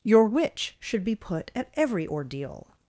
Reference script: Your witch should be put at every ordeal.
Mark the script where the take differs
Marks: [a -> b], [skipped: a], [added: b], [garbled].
Your witch should be put at every ordeal.